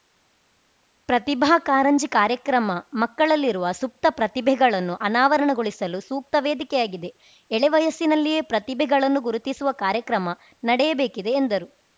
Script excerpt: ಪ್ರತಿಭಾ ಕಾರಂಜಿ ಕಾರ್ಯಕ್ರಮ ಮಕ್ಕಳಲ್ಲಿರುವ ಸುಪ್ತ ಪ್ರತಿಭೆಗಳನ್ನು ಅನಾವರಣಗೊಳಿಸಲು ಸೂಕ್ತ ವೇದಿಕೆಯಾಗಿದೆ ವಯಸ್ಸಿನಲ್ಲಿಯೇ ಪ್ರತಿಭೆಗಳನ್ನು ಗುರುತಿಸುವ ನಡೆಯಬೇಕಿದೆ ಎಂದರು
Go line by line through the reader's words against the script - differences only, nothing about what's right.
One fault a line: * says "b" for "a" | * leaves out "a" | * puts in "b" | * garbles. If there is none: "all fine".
* puts in "ಎಳೆ"
* puts in "ಕಾರ್ಯಕ್ರಮ"